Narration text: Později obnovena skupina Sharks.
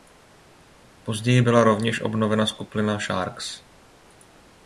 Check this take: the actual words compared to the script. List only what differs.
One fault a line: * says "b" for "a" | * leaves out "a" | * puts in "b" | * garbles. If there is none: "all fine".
* puts in "byla rovněž"